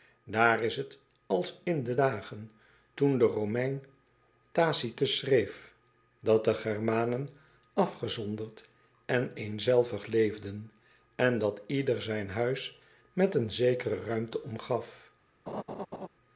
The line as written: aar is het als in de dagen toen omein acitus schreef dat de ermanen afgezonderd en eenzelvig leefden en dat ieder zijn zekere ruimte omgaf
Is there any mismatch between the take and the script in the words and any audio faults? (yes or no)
yes